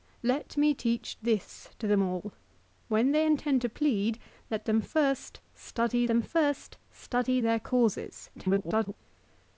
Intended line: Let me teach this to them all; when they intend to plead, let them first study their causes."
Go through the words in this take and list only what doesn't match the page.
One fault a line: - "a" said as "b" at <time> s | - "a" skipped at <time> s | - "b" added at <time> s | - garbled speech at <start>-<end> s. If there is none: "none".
- "them first study" added at 6.1 s
- garbled speech at 8.4-9.0 s